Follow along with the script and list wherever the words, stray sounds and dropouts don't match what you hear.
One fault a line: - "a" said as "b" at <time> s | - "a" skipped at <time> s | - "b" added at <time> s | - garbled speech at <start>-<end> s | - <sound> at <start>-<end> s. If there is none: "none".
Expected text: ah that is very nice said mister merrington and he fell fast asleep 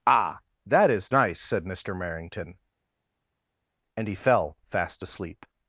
- "very" skipped at 1.1 s